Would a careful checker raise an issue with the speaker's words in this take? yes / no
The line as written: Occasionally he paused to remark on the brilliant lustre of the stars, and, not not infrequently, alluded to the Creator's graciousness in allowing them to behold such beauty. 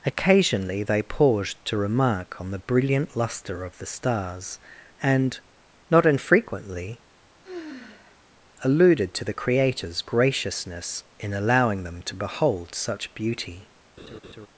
yes